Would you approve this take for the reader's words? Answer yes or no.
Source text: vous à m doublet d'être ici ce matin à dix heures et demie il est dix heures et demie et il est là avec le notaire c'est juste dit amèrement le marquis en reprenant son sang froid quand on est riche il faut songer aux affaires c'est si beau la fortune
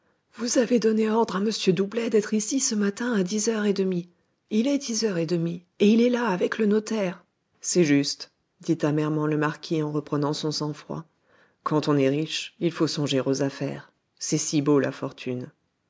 no